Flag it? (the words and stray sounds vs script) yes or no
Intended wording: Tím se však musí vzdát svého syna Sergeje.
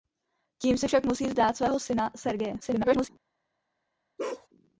yes